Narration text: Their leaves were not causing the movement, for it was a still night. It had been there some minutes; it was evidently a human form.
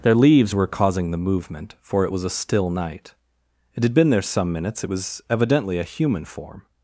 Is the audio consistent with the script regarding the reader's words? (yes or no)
no